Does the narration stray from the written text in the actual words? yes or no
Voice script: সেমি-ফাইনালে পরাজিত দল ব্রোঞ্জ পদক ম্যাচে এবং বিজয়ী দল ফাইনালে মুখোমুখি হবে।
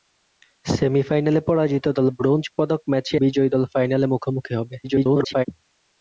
yes